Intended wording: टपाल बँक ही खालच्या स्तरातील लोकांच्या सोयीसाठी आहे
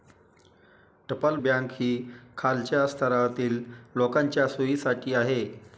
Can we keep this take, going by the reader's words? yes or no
yes